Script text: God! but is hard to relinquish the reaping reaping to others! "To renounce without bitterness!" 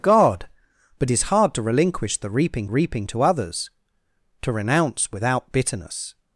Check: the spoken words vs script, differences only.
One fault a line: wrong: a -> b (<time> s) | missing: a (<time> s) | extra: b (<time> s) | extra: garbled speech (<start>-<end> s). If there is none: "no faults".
no faults